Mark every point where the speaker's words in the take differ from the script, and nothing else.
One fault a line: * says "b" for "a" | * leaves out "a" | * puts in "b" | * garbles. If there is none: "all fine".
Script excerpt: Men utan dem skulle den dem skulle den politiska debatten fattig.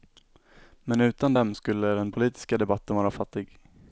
* leaves out "dem skulle den"
* puts in "vara"